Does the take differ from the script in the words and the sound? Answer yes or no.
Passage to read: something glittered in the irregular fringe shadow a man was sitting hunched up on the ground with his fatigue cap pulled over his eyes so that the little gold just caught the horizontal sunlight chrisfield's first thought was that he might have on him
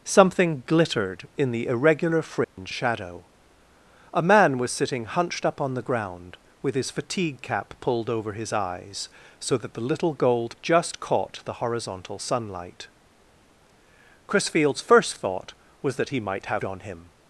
yes